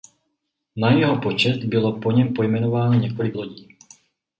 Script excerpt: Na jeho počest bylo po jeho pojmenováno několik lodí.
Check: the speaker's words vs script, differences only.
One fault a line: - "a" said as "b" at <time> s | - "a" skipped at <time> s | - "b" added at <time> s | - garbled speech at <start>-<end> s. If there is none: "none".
- "jeho" said as "něm" at 2.1 s